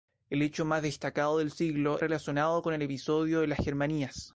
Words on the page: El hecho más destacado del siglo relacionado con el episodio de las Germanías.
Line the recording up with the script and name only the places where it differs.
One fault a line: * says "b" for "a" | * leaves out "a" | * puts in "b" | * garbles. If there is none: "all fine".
all fine